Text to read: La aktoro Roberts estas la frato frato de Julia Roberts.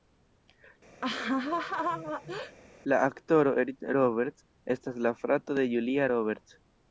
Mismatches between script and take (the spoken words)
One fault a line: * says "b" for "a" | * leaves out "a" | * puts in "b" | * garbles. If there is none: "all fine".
* puts in "Eric"
* leaves out "frato"